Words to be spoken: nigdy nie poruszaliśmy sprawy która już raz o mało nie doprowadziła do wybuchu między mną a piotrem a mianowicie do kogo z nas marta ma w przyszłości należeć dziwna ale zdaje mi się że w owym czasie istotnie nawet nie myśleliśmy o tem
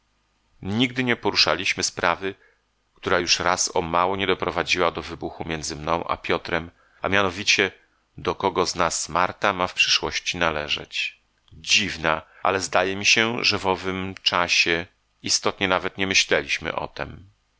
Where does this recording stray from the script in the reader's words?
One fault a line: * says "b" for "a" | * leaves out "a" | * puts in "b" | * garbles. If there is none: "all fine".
all fine